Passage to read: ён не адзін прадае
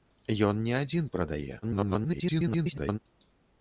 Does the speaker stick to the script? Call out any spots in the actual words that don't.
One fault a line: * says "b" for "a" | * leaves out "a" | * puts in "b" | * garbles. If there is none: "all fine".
* garbles